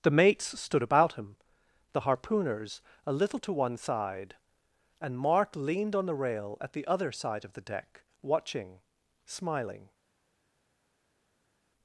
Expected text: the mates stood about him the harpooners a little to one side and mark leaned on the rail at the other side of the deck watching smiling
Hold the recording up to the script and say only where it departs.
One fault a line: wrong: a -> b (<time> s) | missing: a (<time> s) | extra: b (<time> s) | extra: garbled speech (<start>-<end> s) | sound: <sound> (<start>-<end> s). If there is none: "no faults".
no faults